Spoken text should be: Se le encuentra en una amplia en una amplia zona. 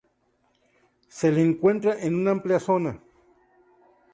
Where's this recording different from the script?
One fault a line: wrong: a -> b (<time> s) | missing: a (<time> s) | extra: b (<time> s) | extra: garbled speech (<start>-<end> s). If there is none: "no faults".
missing: en una amplia (2.6 s)